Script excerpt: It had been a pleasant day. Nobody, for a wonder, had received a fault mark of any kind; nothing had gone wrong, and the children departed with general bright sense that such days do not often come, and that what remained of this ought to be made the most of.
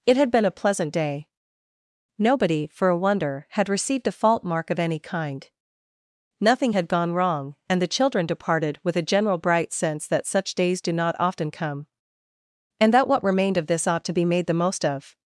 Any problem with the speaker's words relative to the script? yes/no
yes